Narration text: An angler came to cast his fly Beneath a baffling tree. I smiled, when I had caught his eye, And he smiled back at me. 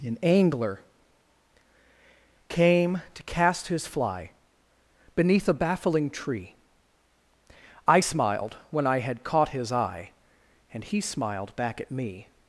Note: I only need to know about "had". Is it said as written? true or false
true